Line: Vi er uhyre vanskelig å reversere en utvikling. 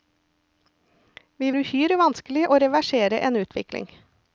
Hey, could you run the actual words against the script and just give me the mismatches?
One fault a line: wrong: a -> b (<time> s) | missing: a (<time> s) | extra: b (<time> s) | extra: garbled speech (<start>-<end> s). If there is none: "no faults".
no faults